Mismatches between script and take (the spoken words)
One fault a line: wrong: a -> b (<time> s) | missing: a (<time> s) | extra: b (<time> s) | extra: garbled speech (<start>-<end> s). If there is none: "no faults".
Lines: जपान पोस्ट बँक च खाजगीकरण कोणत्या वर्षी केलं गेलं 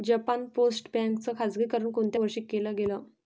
no faults